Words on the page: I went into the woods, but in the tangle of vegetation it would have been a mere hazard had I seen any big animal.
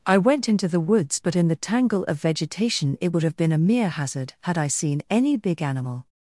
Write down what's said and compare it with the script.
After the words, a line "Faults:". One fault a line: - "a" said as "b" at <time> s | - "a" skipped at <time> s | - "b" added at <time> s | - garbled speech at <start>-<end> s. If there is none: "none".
I went into the woods, but in the tangle of vegetation it would have been a mere hazard had I seen any big animal.
Faults:
none